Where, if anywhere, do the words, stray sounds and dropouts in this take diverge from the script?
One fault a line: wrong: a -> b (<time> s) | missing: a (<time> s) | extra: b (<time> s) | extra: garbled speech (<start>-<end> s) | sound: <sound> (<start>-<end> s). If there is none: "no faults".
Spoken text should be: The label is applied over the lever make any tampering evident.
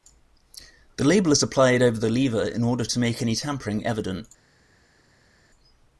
extra: in order to (2.4 s)